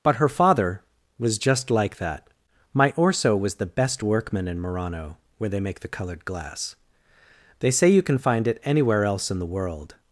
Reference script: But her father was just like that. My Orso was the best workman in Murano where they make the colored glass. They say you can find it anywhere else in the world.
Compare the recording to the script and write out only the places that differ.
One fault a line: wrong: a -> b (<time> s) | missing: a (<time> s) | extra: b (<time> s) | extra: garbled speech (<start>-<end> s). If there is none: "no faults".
no faults